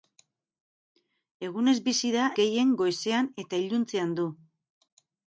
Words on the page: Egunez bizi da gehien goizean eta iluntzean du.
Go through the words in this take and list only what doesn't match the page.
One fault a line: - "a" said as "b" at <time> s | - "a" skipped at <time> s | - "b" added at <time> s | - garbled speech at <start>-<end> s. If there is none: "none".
none